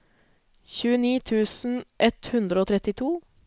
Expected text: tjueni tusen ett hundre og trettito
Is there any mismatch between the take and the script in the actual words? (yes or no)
no